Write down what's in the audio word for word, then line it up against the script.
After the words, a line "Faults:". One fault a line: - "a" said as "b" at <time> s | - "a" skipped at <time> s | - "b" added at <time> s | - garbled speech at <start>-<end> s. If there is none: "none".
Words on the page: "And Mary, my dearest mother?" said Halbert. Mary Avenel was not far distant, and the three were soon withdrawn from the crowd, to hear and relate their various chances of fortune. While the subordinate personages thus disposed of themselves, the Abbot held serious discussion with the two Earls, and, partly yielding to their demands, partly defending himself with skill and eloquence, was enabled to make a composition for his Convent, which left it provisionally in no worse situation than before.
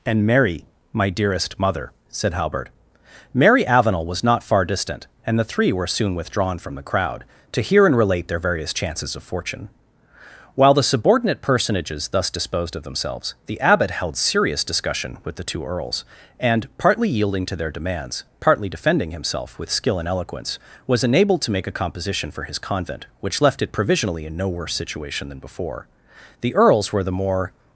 "And Mary, my dearest mother?" said Halbert. Mary Avenel was not far distant, and the three were soon withdrawn from the crowd, to hear and relate their various chances of fortune. While the subordinate personages thus disposed of themselves, the Abbot held serious discussion with the two Earls, and, partly yielding to their demands, partly defending himself with skill and eloquence, was enabled to make a composition for his Convent, which left it provisionally in no worse situation than before. The Earls were the more
Faults:
- "The Earls were the more" added at 26.4 s